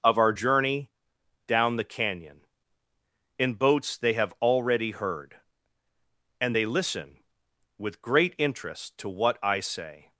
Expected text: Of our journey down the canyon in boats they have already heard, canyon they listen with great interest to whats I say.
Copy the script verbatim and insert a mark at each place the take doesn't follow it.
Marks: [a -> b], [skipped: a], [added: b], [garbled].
Of our journey down the canyon in boats they have already heard, [canyon -> and] they listen with great interest to [whats -> what] I say.